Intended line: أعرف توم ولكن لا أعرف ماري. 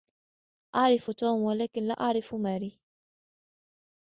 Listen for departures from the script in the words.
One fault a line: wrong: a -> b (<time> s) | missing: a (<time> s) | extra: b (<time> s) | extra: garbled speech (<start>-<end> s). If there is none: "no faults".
no faults